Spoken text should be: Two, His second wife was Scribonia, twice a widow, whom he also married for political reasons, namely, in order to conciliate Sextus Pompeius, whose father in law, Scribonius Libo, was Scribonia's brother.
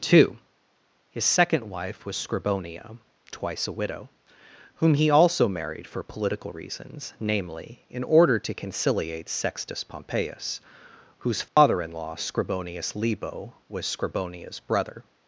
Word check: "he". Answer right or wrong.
right